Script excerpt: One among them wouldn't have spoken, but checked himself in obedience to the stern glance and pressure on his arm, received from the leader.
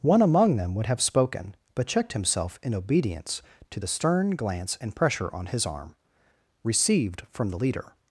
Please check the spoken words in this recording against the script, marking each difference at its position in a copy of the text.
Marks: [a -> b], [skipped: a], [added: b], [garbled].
One among them [wouldn't -> would] have spoken, but checked himself in obedience to the stern glance and pressure on his arm, received from the leader.